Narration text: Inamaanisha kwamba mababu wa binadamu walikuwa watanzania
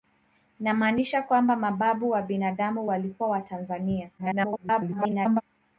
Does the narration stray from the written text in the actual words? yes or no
yes